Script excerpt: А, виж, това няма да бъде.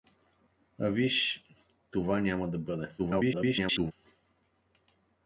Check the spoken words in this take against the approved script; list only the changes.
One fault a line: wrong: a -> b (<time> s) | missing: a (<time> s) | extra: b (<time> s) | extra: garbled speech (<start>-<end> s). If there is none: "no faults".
extra: garbled speech (3.0-3.9 s)